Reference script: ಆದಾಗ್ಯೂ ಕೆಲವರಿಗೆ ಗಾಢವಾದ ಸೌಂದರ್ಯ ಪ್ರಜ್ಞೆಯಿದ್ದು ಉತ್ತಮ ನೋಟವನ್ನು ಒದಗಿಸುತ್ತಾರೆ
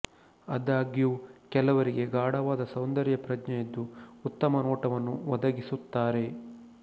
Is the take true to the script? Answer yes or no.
yes